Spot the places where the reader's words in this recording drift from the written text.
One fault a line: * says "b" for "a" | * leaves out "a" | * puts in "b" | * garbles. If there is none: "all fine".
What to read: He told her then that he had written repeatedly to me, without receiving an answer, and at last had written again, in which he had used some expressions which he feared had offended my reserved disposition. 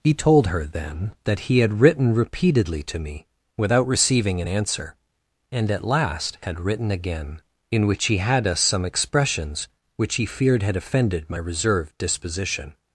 * says "us" for "used"